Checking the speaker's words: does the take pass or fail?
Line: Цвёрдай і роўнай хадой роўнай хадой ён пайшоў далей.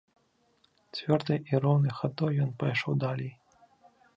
fail